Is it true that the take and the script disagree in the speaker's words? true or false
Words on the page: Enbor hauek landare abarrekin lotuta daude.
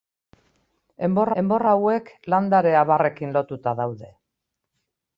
true